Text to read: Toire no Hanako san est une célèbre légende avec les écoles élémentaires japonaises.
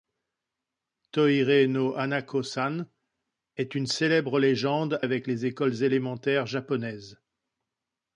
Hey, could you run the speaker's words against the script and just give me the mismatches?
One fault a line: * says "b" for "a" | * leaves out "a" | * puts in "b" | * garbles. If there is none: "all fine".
all fine